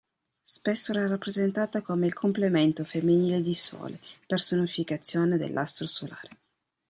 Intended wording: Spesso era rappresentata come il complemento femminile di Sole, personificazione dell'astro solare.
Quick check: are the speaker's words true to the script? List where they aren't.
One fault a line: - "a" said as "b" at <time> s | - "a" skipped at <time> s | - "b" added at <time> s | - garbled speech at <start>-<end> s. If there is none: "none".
none